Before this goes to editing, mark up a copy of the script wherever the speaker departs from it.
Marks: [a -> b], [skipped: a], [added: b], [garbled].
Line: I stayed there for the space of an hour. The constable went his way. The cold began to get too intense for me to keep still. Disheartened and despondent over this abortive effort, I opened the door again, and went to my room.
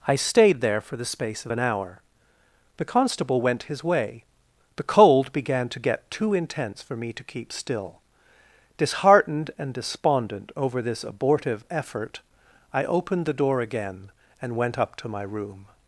I stayed there for the space of an hour. The constable went his way. The cold began to get too intense for me to keep still. Disheartened and despondent over this abortive effort, I opened the door again, and went [added: up] to my room.